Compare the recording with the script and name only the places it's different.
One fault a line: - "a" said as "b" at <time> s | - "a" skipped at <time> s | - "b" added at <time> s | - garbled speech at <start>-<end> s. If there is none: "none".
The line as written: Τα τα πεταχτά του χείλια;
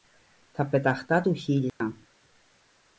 - "τα" skipped at 0.7 s